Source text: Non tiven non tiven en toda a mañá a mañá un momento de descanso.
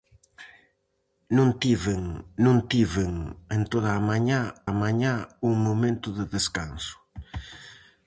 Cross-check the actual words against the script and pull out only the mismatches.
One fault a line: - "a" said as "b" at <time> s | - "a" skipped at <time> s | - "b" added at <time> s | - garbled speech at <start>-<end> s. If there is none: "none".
none